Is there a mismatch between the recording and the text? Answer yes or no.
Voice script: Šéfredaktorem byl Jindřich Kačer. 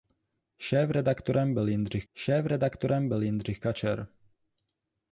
yes